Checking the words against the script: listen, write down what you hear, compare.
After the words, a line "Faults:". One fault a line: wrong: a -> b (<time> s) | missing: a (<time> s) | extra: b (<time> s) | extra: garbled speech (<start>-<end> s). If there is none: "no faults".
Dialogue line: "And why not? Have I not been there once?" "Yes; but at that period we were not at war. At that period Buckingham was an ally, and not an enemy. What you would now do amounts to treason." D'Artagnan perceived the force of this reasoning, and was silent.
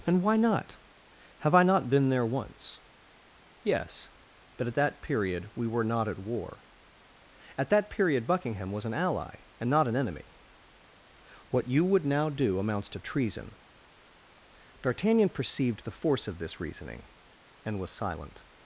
"And why not? Have I not been there once?" "Yes; but at that period we were not at war. At that period Buckingham was an ally, and not an enemy. What you would now do amounts to treason." D'Artagnan perceived the force of this reasoning, and was silent.
Faults:
no faults